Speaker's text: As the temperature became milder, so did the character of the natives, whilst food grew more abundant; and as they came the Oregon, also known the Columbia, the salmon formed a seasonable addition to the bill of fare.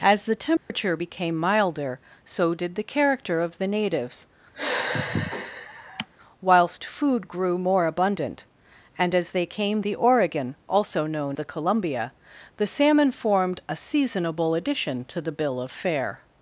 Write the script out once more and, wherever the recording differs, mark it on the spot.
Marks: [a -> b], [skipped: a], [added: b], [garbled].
As the temperature became milder, so did the character of the natives, whilst food grew more abundant; and as they came the Oregon, also known the Columbia, the salmon formed a seasonable addition to the bill of fare.